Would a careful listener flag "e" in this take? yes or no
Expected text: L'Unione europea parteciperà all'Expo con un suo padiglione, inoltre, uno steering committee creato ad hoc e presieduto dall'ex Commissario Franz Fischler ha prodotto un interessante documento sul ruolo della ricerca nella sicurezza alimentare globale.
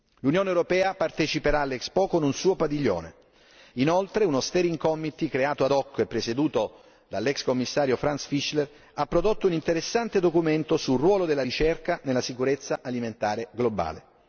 no